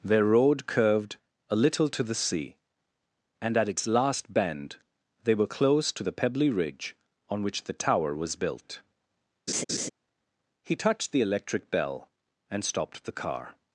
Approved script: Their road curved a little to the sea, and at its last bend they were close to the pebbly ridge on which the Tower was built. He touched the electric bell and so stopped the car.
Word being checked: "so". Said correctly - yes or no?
no